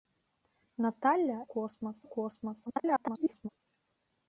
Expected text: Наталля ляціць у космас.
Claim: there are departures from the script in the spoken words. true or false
true